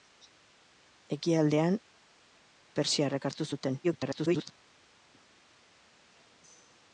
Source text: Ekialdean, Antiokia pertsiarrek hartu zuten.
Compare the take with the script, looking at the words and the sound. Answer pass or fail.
fail